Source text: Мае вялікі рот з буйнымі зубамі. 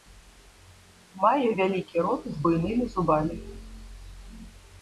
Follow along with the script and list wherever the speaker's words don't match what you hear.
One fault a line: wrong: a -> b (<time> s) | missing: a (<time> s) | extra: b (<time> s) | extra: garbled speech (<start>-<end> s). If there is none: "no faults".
no faults